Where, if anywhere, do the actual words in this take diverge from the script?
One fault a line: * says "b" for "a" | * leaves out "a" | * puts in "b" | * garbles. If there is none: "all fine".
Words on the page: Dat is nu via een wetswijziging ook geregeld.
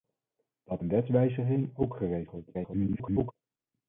* leaves out "is nu via"
* garbles